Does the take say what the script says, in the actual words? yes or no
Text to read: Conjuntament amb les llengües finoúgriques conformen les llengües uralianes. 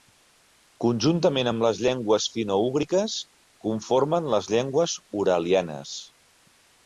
yes